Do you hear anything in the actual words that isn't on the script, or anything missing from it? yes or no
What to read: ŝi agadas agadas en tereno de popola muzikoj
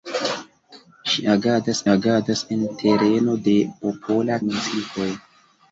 no